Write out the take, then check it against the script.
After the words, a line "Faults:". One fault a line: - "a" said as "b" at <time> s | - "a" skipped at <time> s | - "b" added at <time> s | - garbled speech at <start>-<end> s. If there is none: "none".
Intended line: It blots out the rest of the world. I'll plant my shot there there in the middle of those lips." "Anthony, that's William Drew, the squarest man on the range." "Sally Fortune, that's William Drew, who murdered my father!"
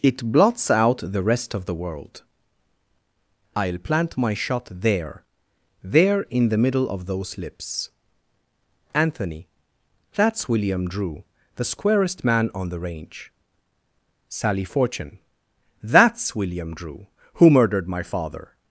It blots out the rest of the world. I'll plant my shot there there in the middle of those lips." "Anthony, that's William Drew, the squarest man on the range." "Sally Fortune, that's William Drew, who murdered my father!"
Faults:
none